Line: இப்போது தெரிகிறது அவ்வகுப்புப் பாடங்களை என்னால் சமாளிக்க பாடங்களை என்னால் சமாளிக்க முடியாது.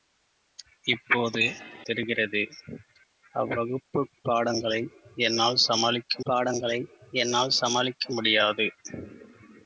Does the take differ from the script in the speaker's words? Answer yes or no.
no